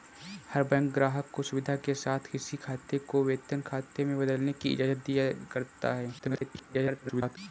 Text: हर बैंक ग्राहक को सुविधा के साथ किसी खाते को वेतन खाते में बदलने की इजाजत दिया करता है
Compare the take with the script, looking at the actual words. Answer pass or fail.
fail